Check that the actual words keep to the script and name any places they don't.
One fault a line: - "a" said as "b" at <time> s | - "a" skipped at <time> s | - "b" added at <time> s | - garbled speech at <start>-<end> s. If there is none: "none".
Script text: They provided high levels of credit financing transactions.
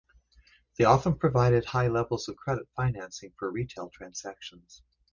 - "often" added at 0.8 s
- "for retail" added at 3.4 s